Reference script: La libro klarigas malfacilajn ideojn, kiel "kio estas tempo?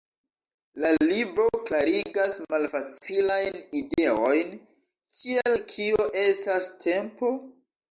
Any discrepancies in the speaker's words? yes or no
no